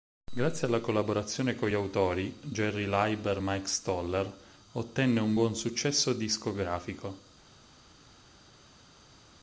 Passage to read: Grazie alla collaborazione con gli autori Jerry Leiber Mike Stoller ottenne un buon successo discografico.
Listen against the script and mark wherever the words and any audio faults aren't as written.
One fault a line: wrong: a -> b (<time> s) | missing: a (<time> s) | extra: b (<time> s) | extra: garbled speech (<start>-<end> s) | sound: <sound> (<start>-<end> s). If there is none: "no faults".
no faults